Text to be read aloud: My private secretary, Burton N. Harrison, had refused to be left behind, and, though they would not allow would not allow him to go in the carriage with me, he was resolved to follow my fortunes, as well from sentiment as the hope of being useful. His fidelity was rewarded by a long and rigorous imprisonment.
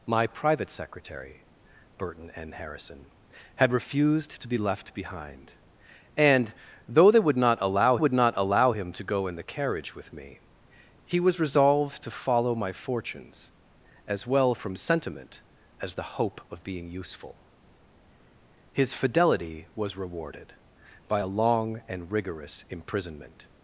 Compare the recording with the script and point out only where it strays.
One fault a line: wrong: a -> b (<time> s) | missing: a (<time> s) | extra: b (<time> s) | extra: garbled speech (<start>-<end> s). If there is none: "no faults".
no faults